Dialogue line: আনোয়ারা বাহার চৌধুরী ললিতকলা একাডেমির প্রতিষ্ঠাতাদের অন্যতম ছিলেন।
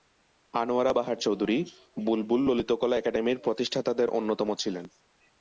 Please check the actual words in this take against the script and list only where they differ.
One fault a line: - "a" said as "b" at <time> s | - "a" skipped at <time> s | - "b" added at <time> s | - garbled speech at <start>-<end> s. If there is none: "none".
- "বুলবুল" added at 2.0 s